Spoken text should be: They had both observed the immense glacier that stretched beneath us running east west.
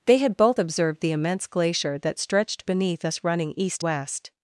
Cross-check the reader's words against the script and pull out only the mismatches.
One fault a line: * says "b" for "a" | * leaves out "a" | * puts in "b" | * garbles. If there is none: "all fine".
all fine